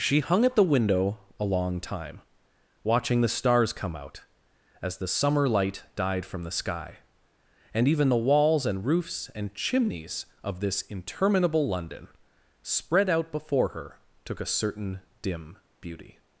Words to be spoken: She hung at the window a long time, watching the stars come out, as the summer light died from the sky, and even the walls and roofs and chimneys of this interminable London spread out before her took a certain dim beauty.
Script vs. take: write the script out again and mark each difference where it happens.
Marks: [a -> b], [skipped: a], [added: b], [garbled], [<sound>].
She hung at the window a long time, watching the stars come out, as the summer light died from the sky, and even the walls and roofs and chimneys of this interminable London spread out before her took a certain dim beauty.